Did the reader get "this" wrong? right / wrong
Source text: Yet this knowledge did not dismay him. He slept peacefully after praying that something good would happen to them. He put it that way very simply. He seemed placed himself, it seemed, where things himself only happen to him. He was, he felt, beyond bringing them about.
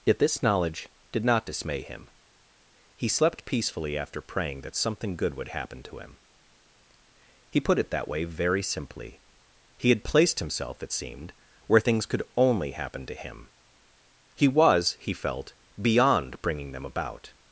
right